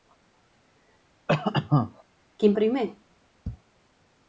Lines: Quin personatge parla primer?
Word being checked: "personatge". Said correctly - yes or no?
no